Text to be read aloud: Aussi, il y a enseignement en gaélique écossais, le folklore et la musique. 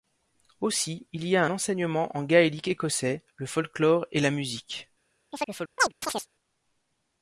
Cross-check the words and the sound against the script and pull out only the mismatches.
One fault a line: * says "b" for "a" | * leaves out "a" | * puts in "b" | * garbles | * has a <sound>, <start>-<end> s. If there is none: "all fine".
* has a chirp, 5.3-6.3 s